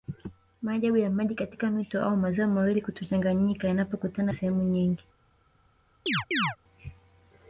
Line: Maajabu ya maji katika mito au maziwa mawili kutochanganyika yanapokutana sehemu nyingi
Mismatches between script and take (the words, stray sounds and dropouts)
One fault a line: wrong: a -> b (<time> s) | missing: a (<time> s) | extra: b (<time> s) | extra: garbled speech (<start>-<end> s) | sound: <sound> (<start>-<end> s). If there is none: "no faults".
sound: chirp (6.1-6.6 s)